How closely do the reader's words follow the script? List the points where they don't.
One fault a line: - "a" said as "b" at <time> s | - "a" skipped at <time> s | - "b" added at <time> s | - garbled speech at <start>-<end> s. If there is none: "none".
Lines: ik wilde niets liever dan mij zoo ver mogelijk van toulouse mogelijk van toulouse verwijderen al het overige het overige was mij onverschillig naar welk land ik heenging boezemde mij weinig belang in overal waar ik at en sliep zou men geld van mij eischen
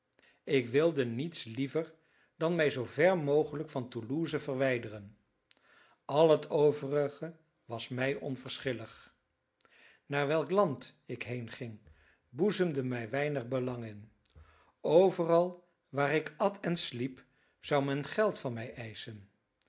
- "mogelijk van toulouse" skipped at 4.4 s
- "het overige" skipped at 7.3 s